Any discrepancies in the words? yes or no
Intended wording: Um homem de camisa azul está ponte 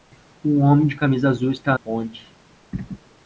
no